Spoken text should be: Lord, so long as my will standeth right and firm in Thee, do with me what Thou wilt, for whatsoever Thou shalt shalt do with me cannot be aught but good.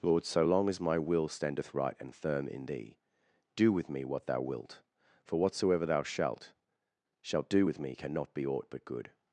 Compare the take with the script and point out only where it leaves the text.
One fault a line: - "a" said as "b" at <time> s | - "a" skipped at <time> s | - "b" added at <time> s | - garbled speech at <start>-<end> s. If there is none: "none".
none